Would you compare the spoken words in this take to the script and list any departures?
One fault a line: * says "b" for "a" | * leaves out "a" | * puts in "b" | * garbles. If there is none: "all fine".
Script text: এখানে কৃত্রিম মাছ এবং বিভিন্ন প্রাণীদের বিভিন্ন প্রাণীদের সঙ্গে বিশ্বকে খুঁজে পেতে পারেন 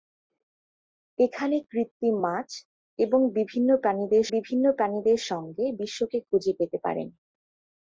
all fine